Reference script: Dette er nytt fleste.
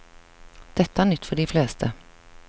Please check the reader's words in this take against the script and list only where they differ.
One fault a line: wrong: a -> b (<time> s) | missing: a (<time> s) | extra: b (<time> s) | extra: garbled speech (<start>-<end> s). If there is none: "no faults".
extra: for de (1.2 s)